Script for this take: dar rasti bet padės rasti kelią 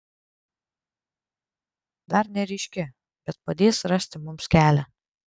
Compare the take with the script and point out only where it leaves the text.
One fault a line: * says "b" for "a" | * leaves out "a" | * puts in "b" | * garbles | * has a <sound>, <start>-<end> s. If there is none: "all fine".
* says "neryški" for "rasti"
* puts in "mums"